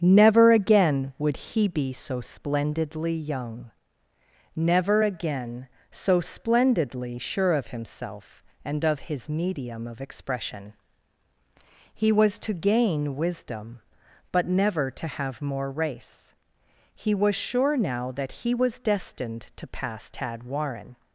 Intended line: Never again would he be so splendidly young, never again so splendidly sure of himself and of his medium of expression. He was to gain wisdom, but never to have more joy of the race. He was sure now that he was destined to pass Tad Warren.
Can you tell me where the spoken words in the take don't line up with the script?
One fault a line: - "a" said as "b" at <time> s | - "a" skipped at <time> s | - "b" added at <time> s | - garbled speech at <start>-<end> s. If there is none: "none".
- "joy of the" skipped at 15.7 s